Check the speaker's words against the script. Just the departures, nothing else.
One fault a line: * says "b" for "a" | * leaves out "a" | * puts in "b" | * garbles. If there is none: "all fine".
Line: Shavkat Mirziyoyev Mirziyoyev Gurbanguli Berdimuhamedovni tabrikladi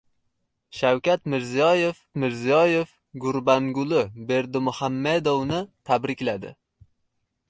all fine